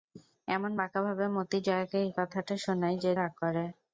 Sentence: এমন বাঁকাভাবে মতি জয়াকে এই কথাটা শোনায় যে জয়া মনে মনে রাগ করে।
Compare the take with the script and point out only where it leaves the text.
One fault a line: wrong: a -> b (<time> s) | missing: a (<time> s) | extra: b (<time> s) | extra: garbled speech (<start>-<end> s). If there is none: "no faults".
missing: জয়া মনে মনে (3.1 s)